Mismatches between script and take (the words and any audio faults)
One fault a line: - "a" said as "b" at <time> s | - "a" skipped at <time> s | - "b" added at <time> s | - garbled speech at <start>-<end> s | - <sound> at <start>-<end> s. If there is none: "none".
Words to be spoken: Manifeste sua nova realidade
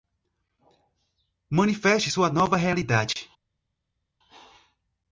none